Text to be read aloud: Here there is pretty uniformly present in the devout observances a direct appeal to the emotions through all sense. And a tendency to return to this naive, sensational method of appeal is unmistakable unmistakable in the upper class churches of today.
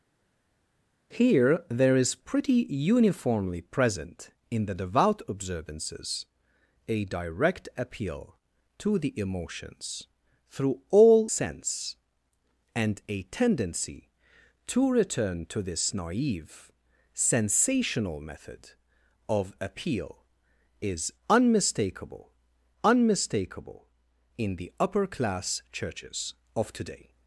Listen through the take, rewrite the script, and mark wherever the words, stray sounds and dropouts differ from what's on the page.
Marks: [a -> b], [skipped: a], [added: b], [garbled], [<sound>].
Here there is pretty uniformly present in the devout observances a direct appeal to the emotions through all sense. And a tendency to return to this naive, sensational method of appeal is unmistakable unmistakable in the upper class churches of today.